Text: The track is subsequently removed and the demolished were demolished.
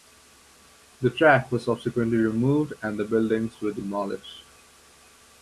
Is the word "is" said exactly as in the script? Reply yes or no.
no